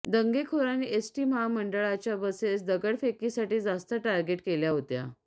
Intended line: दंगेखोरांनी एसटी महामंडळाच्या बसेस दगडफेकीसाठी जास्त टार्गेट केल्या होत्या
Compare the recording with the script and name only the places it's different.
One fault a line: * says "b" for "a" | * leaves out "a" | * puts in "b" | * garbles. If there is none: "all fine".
all fine